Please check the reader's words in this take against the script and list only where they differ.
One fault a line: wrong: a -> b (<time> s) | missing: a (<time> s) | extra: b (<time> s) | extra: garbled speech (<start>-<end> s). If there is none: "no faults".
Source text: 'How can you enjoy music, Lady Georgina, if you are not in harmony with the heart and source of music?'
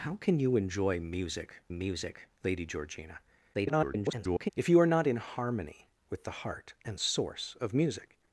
extra: music (1.7 s)
extra: garbled speech (3.5-4.5 s)